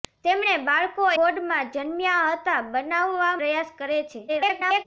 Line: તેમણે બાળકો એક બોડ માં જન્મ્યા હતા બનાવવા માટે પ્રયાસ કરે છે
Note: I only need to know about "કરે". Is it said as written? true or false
true